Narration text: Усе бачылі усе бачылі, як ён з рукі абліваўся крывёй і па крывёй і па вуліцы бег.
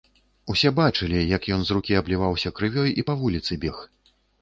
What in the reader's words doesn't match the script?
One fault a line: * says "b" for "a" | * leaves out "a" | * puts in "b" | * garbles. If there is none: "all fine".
* leaves out "усе бачылі"
* leaves out "крывёй і па"